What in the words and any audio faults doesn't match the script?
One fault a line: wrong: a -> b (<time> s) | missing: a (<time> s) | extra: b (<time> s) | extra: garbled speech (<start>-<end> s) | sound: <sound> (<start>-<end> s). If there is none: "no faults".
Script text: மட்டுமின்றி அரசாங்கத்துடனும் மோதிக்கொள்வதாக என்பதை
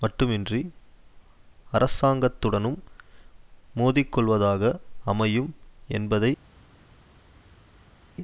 extra: அமையும் (5.0 s)